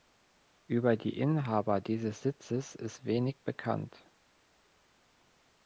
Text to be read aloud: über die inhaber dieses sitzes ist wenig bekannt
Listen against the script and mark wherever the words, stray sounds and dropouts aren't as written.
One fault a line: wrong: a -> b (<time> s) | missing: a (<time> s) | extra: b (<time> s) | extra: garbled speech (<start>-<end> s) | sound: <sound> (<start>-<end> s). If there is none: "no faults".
no faults